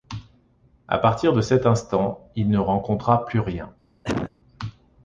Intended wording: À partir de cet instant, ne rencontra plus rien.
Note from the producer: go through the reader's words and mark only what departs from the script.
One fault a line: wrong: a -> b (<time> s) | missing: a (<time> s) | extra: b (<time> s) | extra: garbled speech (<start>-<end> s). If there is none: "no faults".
extra: il (2.4 s)